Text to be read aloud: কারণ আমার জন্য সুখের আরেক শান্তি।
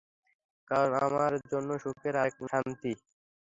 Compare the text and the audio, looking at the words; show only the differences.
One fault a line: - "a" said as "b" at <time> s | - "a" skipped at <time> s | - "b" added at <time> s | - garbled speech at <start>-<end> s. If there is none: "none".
none